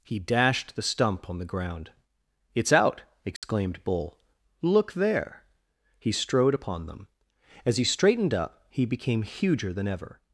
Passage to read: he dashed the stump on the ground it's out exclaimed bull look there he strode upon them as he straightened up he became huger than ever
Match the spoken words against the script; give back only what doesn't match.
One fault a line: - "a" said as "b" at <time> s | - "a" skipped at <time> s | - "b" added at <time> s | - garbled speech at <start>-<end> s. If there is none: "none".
none